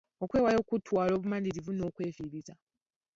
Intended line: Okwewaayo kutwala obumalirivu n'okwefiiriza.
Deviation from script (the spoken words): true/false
false